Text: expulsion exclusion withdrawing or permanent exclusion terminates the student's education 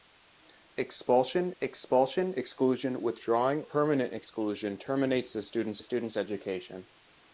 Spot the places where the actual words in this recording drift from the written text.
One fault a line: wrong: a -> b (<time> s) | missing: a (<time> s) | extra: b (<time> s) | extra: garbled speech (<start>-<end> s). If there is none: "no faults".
extra: expulsion (1.6 s)
missing: or (3.6 s)
extra: student's (5.8 s)